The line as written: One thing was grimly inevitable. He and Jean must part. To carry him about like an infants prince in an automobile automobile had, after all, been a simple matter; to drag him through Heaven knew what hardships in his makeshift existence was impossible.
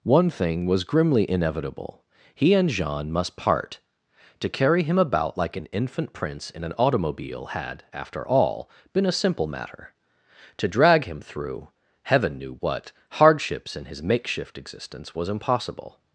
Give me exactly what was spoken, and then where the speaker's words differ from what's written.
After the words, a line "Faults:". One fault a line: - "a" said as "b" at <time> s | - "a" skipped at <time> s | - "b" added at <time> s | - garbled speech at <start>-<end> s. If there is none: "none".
One thing was grimly inevitable. He and Jean must part. To carry him about like an infant prince in an automobile had, after all, been a simple matter; to drag him through Heaven knew what hardships in his makeshift existence was impossible.
Faults:
- "infants" said as "infant" at 5.7 s
- "automobile" skipped at 7.5 s